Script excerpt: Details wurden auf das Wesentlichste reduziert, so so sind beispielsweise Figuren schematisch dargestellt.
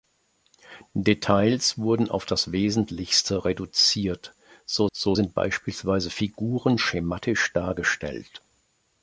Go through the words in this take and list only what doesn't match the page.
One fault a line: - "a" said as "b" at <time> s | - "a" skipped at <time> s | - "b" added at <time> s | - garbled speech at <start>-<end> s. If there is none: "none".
none